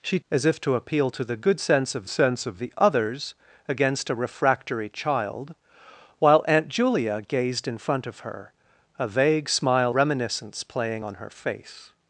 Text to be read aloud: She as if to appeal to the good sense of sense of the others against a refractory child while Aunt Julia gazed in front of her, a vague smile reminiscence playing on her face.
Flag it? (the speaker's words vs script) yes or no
no